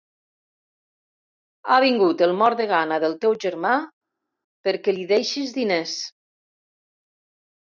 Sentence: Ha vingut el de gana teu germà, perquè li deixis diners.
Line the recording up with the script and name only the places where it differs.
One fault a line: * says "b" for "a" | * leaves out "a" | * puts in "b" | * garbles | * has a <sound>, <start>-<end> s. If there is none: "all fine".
* puts in "mort"
* puts in "del"